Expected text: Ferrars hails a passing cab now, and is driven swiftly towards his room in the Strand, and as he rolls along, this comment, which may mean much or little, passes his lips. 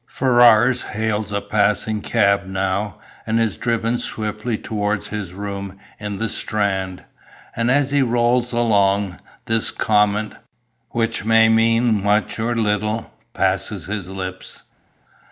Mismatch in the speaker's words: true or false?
false